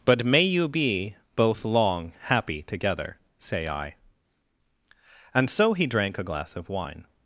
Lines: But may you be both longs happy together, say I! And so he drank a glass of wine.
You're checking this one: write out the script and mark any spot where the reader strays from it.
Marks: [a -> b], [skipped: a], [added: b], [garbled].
But may you be both [longs -> long] happy together, say I! And so he drank a glass of wine.